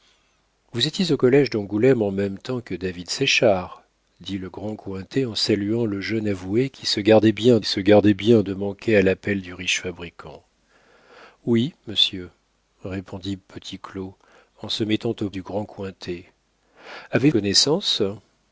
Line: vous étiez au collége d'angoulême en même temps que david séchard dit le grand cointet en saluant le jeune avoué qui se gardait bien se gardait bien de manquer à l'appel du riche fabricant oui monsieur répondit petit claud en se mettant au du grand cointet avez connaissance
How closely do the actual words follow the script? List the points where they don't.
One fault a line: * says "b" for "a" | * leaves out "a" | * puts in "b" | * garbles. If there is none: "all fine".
all fine